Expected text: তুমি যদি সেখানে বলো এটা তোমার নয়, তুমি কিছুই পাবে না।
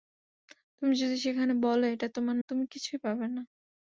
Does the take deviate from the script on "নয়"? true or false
true